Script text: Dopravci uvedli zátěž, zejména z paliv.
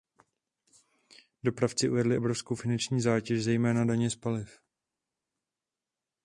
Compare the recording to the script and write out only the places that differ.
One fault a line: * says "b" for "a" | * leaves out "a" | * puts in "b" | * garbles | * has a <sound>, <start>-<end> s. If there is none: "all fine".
* puts in "obrovskou finanční"
* puts in "daně"